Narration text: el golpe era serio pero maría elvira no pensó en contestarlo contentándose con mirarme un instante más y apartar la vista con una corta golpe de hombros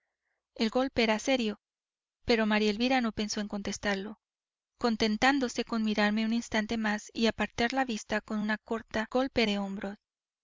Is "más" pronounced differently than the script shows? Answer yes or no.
no